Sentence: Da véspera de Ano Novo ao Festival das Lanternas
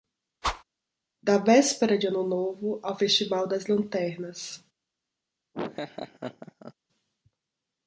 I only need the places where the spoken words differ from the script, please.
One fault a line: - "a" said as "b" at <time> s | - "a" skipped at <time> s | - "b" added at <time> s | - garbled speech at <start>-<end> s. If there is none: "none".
none